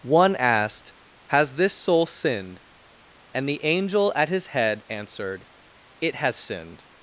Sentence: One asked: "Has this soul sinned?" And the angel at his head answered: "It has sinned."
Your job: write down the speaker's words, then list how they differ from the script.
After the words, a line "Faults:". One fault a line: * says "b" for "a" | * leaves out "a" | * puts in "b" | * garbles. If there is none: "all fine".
One asked: "Has this soul sinned?" And the angel at his head answered: "It has sinned."
Faults:
all fine